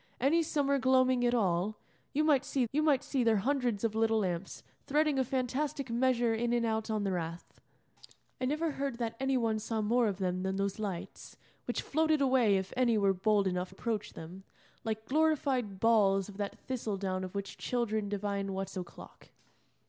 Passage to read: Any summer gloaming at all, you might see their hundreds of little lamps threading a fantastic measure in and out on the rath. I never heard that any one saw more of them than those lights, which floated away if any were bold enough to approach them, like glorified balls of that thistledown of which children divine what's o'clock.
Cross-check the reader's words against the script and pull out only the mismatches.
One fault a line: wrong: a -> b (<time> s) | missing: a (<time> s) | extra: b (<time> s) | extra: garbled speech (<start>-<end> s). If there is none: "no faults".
extra: you might see (2.7 s)
missing: to (13.7 s)